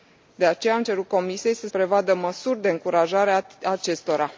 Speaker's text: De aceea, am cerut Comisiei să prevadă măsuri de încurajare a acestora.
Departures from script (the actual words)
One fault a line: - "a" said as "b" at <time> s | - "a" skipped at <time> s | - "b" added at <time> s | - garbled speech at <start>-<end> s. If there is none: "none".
none